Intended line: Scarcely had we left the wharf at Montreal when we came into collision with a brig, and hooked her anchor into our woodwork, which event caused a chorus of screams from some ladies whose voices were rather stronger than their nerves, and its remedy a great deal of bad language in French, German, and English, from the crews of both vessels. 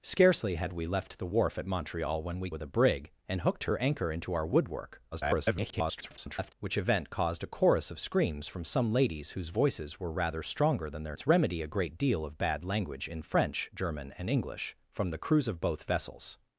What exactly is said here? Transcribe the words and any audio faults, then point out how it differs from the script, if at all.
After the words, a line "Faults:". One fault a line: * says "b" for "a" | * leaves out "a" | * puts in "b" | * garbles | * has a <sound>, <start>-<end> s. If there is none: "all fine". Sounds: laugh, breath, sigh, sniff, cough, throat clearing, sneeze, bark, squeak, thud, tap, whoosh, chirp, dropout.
Scarcely had we left the wharf at Montreal when we with a brig, and hooked her anchor into our woodwork, [garbled] which event caused a chorus of screams from some ladies whose voices were rather stronger than their its remedy a great deal of bad language in French, German, and English, from the crews of both vessels.
Faults:
* leaves out "came into collision"
* garbles
* leaves out "nerves and"